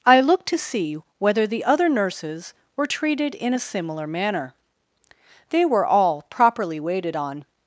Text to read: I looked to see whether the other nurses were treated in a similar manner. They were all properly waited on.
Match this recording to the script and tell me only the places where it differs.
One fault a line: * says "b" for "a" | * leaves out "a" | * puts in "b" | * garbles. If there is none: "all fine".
all fine